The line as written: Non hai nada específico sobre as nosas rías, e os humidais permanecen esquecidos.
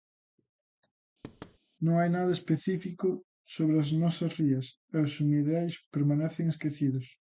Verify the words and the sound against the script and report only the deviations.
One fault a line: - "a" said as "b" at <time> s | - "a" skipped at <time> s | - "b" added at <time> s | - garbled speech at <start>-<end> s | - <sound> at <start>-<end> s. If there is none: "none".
- thud at 1.2-1.6 s